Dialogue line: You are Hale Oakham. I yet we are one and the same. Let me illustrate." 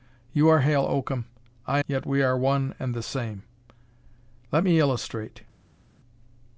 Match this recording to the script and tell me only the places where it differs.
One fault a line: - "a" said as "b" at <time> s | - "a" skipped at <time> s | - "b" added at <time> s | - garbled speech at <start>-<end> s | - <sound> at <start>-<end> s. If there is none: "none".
none